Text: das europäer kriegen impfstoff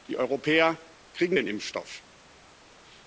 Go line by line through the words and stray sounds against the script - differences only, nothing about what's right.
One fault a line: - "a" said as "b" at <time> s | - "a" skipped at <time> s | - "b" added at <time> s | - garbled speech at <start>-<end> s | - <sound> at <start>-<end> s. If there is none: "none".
- "das" said as "die" at 0.1 s
- "den" added at 1.3 s